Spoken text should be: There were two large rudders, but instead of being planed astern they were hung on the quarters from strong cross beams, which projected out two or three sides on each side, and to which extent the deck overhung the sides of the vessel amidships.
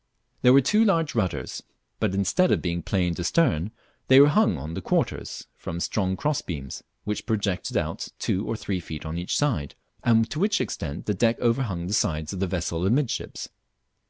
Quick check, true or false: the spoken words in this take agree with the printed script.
false